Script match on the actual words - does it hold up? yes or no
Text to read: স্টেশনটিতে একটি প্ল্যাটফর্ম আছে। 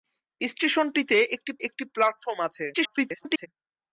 no